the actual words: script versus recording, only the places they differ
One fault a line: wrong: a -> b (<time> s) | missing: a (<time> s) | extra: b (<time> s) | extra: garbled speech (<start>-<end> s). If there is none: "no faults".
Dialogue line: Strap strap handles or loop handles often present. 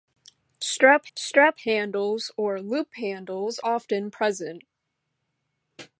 no faults